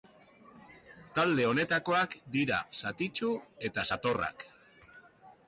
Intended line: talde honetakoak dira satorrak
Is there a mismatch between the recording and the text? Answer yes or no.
yes